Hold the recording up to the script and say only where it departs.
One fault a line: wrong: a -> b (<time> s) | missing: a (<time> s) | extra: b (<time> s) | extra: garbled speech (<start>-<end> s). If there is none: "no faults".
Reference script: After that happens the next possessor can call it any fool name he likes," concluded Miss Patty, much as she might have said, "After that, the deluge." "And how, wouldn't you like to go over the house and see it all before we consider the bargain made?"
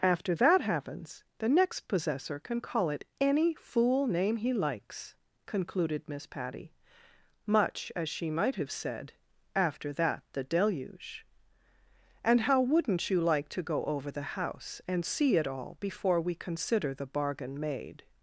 no faults